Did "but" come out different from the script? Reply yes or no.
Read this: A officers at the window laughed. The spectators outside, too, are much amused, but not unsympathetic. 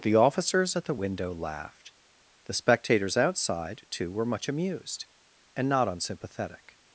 yes